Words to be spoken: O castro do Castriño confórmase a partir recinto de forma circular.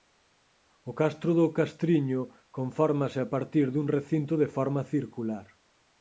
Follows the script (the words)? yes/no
no